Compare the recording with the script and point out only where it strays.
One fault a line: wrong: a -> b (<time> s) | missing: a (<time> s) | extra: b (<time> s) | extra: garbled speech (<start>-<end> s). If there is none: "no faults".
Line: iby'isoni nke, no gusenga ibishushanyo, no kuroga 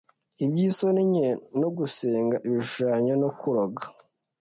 no faults